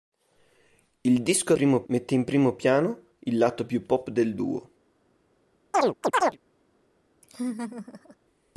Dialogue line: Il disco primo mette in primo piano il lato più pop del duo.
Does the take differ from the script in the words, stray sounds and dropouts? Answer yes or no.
yes